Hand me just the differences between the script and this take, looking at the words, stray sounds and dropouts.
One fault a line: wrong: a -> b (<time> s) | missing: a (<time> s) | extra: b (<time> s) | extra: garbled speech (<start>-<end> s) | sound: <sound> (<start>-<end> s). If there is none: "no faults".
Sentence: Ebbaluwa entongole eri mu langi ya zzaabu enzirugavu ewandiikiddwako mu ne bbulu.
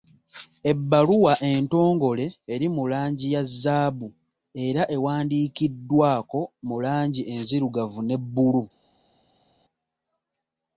wrong: enzirugavu -> era (4.7 s)
extra: langi enzirugavu (6.8 s)